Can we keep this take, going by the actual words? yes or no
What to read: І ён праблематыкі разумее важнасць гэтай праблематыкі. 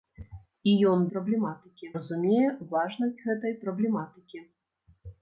yes